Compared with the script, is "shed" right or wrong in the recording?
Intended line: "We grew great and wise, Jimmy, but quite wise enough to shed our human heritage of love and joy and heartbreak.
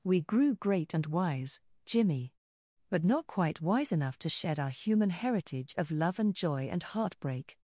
right